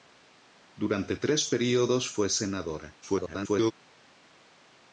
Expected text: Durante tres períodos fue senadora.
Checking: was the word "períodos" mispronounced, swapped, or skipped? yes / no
no